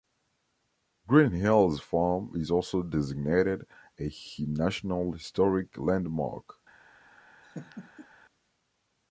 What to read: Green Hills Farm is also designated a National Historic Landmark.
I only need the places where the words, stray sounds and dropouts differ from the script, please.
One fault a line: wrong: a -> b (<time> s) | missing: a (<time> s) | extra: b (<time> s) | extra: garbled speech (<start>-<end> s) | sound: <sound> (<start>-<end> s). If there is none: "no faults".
sound: laugh (7.4-8.1 s)